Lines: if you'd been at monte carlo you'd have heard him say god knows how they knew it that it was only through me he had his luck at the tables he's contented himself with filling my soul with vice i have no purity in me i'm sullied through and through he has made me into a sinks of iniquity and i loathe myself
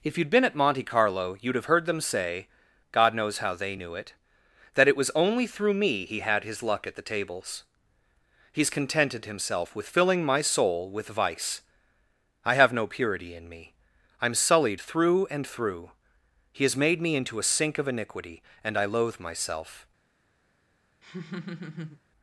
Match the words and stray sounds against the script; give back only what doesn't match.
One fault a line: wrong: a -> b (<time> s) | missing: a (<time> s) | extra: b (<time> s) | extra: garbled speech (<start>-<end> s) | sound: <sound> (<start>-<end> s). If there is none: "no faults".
wrong: him -> them (1.9 s)
wrong: sinks -> sink (17.5 s)
sound: laugh (21.0-22.0 s)